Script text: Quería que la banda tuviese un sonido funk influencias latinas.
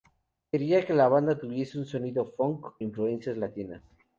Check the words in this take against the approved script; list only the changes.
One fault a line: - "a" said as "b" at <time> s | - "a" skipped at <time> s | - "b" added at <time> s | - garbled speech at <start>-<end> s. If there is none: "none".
none